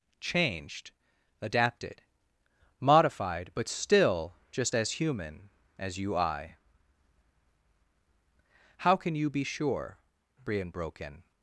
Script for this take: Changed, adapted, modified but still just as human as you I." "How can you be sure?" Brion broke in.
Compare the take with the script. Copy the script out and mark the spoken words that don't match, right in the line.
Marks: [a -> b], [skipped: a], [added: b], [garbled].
Changed, adapted, modified but still just as human as you I." "How can you be sure?" Brion broke in.